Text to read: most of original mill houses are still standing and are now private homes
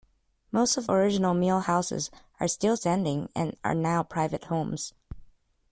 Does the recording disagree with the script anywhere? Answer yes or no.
no